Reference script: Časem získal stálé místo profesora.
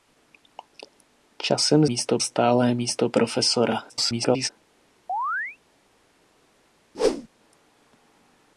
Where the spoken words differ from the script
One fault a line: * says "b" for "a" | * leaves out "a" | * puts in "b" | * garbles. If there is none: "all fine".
* says "místo" for "získal"
* garbles